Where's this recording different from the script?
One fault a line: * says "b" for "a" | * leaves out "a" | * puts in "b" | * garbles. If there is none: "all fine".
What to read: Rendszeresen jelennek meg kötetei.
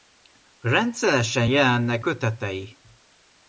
* leaves out "meg"